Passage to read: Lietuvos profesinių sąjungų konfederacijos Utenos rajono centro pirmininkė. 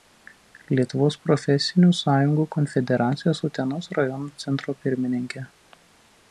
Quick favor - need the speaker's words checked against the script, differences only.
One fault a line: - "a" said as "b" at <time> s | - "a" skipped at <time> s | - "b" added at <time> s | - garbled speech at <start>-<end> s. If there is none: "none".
none